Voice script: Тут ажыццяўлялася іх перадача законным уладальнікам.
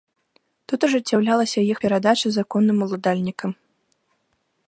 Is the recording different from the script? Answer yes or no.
no